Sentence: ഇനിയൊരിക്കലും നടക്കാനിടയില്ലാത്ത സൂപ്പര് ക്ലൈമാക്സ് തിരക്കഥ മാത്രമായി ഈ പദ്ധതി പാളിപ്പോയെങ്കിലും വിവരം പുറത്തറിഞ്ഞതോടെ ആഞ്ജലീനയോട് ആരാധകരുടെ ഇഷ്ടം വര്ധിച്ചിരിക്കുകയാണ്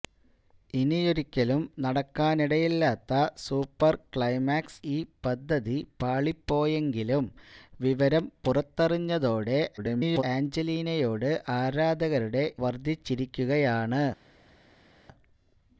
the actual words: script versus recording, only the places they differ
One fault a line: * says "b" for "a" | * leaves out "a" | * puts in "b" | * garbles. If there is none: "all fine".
* leaves out "തിരക്കഥ മാത്രമായി"
* garbles
* leaves out "ഇഷ്ടം"